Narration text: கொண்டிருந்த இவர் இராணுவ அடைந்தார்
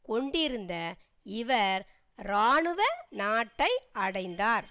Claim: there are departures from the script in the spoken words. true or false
true